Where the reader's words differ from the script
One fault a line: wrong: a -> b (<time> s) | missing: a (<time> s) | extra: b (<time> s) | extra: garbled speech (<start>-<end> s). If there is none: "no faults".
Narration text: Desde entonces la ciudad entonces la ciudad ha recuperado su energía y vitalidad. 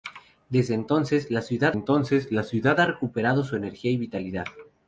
no faults